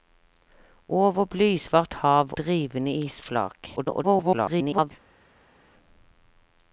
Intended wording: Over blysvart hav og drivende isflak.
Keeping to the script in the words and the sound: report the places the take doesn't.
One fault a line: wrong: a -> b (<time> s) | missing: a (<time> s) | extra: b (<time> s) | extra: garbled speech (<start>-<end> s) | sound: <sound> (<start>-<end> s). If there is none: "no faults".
missing: og (2.3 s)
extra: garbled speech (3.8-4.9 s)